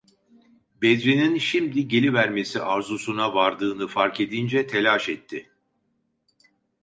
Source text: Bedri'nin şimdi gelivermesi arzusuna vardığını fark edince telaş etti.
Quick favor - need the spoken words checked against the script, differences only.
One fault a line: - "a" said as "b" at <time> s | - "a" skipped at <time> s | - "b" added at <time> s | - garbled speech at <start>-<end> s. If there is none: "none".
none